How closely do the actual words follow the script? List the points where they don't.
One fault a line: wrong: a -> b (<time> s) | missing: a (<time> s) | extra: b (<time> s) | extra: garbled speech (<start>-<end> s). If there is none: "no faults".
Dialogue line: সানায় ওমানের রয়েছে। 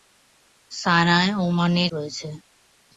no faults